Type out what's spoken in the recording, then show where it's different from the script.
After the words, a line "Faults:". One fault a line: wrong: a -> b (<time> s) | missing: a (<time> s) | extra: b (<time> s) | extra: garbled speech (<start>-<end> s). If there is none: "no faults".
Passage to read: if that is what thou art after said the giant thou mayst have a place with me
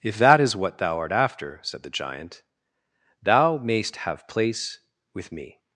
if that is what thou art after said the giant thou mayst have place with me
Faults:
missing: a (4.3 s)